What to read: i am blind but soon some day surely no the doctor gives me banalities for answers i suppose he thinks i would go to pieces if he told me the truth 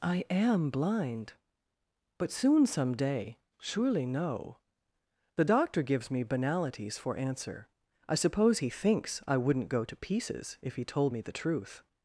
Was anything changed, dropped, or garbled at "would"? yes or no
yes